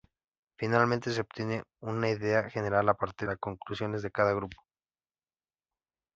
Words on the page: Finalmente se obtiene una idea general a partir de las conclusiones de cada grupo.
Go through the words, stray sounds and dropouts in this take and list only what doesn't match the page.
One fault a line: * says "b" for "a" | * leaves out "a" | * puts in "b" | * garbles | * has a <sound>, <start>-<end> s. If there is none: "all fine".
* leaves out "de"